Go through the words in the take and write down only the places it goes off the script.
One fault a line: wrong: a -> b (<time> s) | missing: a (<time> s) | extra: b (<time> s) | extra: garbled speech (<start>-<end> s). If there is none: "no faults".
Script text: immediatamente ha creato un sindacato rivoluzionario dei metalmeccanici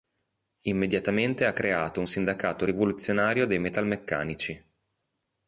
no faults